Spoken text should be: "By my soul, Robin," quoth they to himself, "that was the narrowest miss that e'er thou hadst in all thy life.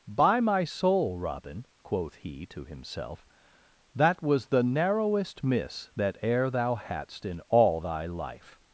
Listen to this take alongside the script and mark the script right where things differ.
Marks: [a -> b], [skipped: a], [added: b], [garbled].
"By my soul, Robin," quoth [they -> he] to himself, "that was the narrowest miss that e'er thou hadst in all thy life.